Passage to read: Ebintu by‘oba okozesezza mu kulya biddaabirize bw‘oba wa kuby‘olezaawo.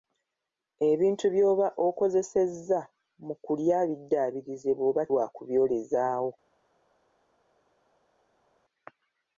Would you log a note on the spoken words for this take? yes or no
no